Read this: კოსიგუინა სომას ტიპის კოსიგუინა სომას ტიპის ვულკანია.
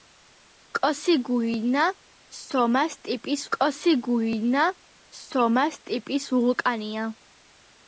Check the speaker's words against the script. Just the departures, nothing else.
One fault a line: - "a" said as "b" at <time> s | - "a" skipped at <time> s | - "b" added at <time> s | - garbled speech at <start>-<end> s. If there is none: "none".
none